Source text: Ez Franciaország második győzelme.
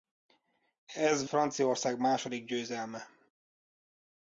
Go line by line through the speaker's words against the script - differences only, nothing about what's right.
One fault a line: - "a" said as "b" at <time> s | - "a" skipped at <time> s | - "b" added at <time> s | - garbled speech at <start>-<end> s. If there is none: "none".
none